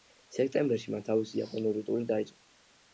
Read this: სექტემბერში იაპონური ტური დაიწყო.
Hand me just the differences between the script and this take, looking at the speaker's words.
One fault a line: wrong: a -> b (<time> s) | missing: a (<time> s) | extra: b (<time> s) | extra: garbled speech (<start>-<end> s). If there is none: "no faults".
extra: მან თავისი (0.9 s)